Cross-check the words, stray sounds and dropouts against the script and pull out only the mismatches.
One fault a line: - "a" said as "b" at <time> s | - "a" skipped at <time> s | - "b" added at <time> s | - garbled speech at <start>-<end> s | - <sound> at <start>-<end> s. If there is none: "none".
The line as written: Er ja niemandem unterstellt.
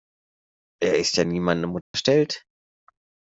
- "ist" added at 1.0 s
- dropout at 1.8-1.9 s